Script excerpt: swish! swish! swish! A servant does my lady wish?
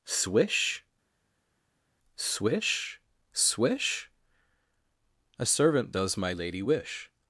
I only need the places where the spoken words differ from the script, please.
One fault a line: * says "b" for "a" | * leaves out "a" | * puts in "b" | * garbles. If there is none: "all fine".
all fine